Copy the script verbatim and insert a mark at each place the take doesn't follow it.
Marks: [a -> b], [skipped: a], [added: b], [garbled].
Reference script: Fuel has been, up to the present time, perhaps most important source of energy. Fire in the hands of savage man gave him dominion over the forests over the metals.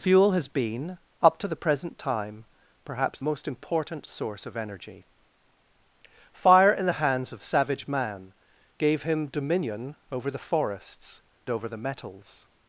Fuel has been, up to the present time, perhaps most important source of energy. Fire in the hands of savage man gave him dominion over the forests over the metals.